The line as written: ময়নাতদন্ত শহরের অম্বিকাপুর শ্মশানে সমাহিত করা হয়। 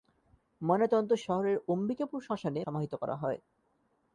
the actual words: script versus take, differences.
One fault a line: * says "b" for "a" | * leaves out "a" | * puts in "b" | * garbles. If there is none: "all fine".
all fine